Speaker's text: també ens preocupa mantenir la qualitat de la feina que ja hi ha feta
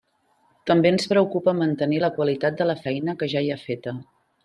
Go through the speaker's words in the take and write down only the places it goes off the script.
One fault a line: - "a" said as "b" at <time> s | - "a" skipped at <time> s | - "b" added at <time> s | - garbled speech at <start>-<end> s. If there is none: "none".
none